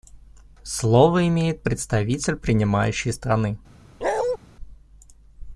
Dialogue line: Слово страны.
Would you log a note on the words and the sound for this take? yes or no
yes